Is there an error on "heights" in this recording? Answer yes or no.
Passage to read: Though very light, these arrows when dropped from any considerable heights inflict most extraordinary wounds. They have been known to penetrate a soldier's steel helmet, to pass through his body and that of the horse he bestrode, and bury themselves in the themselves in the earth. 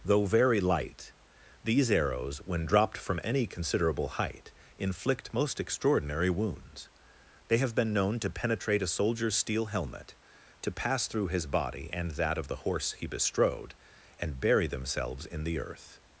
yes